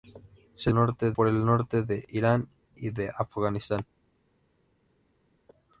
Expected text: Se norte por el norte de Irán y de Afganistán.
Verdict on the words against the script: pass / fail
pass